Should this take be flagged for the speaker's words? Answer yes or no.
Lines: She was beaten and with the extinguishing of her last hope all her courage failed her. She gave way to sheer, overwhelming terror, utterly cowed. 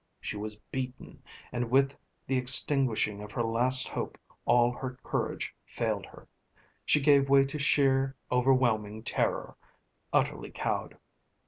no